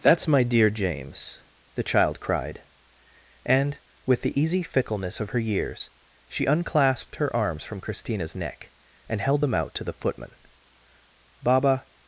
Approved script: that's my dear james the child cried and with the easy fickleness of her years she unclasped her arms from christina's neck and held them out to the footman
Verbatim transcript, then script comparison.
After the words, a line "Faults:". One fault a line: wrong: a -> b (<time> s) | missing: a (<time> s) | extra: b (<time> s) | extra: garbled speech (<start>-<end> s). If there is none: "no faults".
that's my dear james the child cried and with the easy fickleness of her years she unclasped her arms from christina's neck and held them out to the footman baba
Faults:
extra: baba (11.4 s)